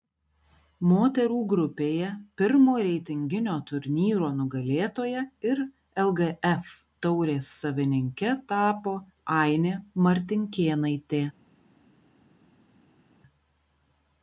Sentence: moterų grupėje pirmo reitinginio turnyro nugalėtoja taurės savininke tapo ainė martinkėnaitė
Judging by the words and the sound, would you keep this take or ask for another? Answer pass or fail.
fail